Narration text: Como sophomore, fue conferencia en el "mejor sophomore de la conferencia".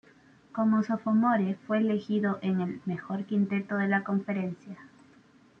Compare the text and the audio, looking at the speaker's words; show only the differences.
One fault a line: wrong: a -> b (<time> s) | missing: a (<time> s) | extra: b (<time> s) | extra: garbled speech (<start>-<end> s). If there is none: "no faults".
wrong: conferencia -> elegido (1.8 s)
wrong: sophomore -> quinteto (3.3 s)